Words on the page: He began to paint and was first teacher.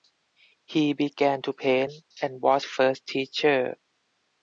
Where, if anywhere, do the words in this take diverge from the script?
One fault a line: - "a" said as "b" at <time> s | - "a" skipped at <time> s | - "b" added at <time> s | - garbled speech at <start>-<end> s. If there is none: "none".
none